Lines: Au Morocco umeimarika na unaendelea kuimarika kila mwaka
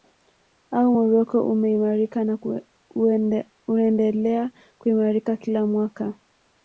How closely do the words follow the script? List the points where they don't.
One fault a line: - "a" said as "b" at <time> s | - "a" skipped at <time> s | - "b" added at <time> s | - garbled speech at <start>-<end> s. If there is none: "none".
none